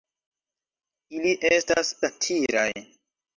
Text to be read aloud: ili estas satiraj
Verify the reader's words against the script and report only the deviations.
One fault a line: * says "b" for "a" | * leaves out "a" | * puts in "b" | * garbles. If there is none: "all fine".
all fine